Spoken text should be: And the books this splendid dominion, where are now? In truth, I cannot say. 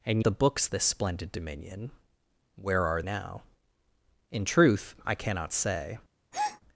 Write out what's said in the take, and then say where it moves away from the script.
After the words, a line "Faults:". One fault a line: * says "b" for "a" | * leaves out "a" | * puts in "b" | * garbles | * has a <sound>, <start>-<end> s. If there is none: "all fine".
And the books this splendid dominion, where are now? In truth, I cannot say.
Faults:
* has a breath, 6.3-6.6 s